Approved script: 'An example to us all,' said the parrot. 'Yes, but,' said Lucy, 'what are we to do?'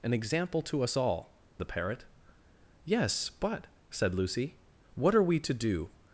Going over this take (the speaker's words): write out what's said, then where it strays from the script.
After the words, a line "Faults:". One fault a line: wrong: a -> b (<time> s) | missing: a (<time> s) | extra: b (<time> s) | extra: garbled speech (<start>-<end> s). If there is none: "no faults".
'An example to us all,' the parrot. 'Yes, but,' said Lucy, 'what are we to do?'
Faults:
missing: said (1.4 s)